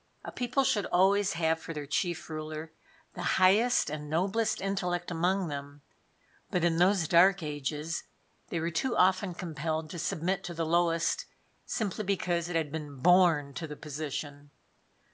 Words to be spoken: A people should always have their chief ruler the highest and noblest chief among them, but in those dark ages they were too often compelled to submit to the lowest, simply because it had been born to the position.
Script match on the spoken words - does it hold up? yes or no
no